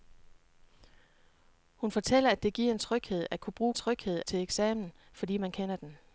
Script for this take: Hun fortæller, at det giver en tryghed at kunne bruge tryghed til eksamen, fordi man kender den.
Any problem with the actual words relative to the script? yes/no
no